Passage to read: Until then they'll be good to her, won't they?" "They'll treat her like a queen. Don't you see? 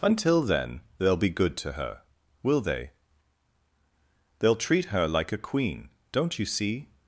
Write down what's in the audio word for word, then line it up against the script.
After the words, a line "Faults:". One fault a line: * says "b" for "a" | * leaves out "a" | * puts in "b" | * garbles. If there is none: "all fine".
Until then they'll be good to her, will they?" "They'll treat her like a queen. Don't you see?
Faults:
* says "will" for "won't"